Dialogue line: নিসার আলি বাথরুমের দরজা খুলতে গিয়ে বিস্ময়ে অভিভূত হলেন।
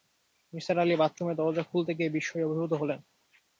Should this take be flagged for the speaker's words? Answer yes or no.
no